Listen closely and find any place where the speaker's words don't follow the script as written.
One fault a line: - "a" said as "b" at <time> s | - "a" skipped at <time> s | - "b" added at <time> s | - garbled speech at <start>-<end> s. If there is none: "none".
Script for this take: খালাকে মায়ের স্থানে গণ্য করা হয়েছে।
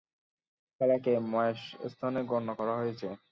none